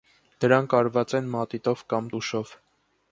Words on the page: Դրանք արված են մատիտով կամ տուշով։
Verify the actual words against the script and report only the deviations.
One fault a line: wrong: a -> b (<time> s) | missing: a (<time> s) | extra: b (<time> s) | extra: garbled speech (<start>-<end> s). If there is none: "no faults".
no faults